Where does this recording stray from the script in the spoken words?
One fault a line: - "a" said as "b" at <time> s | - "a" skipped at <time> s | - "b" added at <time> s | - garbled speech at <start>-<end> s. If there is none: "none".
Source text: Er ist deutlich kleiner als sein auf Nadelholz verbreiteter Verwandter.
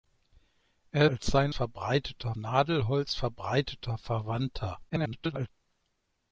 - "ist deutlich kleiner" skipped at 1.1 s
- "auf" said as "verbreiteter" at 1.5 s
- garbled speech at 4.9-5.5 s